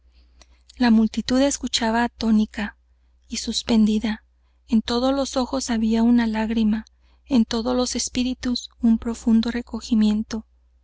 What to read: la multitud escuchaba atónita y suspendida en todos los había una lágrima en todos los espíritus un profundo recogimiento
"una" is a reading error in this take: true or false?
false